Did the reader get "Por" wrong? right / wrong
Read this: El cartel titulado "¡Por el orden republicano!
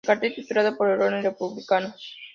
right